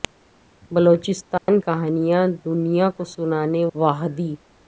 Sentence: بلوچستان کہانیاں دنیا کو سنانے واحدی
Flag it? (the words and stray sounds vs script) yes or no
yes